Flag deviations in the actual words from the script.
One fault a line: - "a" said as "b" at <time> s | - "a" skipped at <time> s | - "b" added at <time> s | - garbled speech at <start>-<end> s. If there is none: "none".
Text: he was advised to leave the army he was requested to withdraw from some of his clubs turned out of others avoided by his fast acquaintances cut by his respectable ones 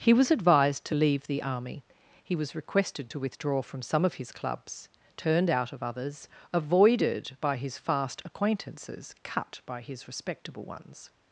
none